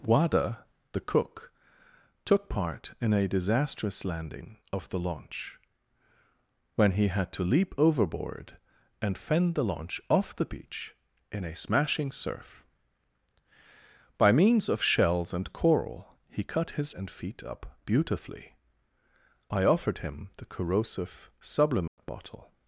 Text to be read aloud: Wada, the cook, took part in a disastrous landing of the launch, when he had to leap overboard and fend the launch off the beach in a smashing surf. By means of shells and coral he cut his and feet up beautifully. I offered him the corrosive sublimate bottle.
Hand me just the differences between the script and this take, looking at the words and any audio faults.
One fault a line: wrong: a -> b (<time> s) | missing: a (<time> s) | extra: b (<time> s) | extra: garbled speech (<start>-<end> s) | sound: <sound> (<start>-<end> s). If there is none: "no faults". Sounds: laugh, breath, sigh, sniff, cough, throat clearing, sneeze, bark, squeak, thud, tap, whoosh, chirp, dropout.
sound: dropout (21.9-22.0 s)